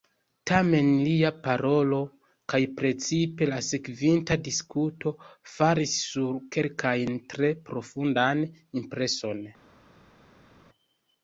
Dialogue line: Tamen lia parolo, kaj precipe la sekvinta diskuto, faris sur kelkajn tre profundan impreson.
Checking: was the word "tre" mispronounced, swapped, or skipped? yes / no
no